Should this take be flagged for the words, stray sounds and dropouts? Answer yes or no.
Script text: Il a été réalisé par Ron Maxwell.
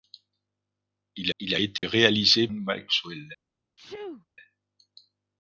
yes